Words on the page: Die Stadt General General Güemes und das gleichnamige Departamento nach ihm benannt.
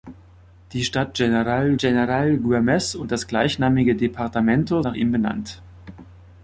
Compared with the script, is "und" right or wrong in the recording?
right